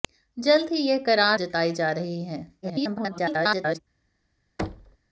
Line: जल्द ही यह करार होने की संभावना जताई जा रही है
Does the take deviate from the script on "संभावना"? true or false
true